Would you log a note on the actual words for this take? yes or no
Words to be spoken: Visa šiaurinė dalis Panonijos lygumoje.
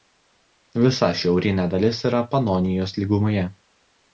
yes